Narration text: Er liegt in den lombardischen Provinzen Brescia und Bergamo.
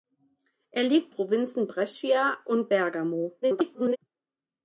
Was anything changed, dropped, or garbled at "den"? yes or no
yes